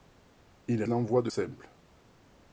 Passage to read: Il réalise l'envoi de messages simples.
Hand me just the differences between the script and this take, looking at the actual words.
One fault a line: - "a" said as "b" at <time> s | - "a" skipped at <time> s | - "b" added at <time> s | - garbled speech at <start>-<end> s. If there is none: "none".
- "réalise" skipped at 0.8 s
- "messages" skipped at 1.3 s